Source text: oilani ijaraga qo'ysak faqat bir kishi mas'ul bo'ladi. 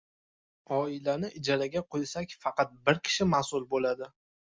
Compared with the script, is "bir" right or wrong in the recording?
right